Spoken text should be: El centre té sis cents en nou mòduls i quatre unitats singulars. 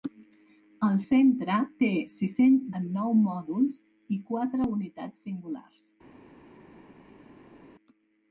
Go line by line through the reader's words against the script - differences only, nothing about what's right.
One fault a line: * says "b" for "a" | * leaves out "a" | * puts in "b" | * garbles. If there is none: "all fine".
all fine